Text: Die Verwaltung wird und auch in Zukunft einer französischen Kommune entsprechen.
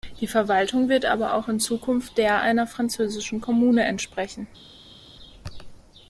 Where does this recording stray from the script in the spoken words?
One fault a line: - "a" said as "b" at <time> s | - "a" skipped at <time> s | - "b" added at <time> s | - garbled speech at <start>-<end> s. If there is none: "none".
- "und" said as "aber" at 1.1 s
- "der" added at 2.2 s